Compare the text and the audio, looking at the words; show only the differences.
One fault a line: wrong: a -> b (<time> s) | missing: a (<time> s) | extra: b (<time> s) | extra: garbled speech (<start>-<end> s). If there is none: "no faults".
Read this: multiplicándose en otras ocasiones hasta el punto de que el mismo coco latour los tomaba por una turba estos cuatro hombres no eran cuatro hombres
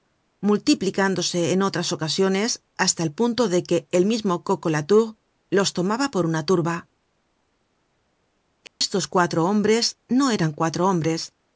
no faults